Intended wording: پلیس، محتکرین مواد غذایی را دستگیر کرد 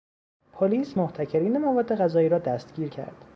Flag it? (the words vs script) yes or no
no